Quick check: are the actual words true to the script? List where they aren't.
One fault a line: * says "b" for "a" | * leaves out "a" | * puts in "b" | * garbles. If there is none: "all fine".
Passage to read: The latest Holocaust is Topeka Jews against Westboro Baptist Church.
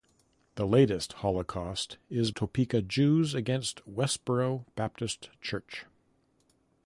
all fine